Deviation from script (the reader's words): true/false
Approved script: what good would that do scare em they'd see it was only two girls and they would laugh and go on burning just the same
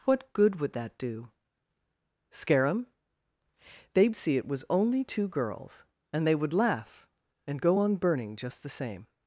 false